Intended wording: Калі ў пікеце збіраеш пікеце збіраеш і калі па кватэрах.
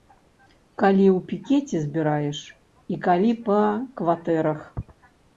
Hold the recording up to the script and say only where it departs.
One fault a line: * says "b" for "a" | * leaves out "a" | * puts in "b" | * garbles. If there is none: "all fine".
* leaves out "пікеце збіраеш"